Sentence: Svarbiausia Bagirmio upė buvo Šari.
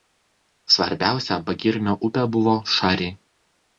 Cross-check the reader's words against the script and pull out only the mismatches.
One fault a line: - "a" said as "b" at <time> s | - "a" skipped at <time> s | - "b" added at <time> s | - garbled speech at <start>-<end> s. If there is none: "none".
none